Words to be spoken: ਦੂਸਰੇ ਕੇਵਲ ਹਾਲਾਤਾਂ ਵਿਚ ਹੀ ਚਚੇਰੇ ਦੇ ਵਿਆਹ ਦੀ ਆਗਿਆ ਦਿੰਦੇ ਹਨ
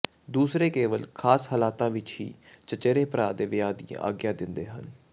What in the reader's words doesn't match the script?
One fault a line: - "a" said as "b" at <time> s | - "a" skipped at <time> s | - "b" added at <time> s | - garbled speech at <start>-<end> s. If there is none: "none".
- "ਖਾਸ" added at 1.1 s
- "ਭਰਾ" added at 3.0 s